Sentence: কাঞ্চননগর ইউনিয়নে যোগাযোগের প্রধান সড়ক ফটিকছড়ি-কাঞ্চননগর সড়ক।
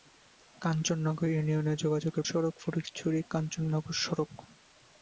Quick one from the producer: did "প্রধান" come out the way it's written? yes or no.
no